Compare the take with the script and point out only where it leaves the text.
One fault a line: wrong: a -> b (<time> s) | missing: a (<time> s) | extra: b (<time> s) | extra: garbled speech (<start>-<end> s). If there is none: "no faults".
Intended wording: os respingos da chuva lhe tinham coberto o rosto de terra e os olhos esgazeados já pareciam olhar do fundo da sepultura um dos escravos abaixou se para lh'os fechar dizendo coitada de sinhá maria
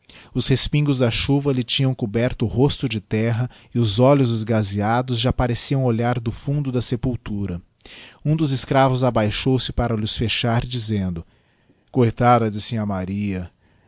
no faults